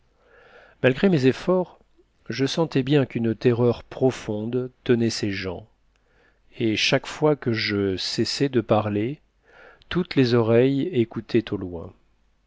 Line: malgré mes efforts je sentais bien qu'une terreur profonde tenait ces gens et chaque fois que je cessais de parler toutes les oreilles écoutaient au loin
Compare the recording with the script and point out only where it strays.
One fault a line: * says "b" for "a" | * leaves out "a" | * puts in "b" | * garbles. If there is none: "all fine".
all fine